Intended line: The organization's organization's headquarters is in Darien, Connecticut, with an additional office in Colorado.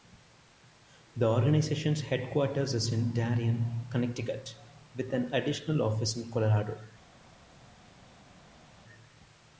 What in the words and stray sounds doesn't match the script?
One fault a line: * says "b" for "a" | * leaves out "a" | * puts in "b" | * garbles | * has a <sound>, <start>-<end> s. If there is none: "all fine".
* leaves out "organization's"